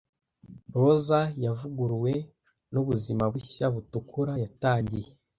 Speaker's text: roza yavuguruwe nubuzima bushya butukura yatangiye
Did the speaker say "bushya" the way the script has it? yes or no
yes